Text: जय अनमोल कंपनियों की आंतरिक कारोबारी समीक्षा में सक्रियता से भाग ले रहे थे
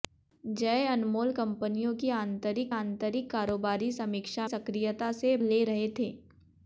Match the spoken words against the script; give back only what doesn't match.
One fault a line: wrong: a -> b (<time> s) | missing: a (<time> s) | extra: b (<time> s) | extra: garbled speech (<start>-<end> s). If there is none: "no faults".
extra: आंतरिक (2.8 s)
missing: में (4.5 s)
missing: भाग (5.4 s)